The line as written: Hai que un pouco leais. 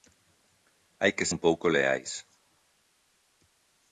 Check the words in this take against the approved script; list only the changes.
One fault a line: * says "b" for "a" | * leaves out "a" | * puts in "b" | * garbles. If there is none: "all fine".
all fine